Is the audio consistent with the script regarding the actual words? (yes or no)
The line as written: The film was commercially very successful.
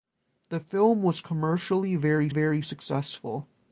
no